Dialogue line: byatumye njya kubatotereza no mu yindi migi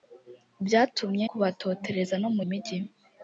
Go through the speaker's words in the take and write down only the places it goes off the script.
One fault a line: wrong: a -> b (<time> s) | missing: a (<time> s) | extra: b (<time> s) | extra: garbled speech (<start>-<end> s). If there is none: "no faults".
missing: njya (1.2 s)
missing: yindi (2.4 s)